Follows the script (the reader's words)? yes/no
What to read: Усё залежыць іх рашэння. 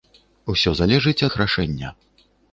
yes